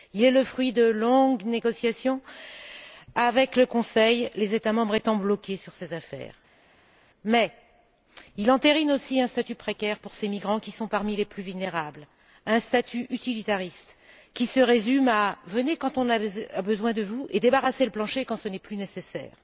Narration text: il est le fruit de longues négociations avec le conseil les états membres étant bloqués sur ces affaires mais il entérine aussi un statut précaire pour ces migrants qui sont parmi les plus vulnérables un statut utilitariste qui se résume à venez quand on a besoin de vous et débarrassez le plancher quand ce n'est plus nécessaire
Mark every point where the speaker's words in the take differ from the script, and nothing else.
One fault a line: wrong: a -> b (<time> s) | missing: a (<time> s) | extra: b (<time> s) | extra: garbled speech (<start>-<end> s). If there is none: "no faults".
no faults